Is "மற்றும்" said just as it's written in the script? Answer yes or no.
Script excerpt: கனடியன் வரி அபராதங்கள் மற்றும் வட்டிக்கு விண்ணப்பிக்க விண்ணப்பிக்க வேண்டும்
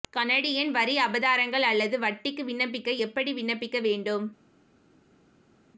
no